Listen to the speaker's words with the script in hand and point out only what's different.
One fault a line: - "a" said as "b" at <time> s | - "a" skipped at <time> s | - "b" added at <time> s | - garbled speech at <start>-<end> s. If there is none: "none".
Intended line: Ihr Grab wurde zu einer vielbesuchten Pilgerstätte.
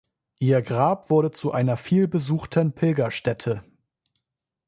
none